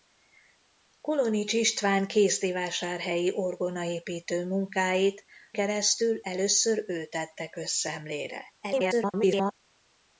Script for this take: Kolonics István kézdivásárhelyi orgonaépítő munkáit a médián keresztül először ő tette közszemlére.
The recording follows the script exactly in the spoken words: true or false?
false